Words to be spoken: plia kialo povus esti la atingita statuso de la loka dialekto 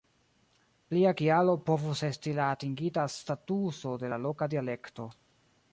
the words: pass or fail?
pass